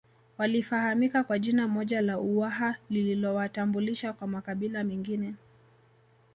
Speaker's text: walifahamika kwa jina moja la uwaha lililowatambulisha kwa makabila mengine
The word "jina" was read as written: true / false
true